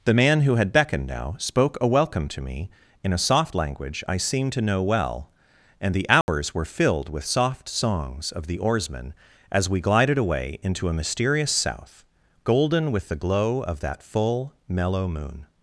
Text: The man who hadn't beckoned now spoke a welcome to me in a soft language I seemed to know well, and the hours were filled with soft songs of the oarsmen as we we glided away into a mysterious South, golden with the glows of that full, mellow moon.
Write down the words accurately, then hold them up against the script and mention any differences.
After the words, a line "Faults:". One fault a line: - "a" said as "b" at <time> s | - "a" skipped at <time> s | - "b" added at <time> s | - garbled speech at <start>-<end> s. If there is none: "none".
The man who had beckoned now spoke a welcome to me in a soft language I seemed to know well, and the hours were filled with soft songs of the oarsmen as we glided away into a mysterious South, golden with the glow of that full, mellow moon.
Faults:
- "hadn't" said as "had" at 0.6 s
- "we" skipped at 9.8 s
- "glows" said as "glow" at 13.2 s